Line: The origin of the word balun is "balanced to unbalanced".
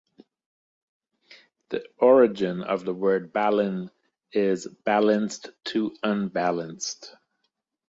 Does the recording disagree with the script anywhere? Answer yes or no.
no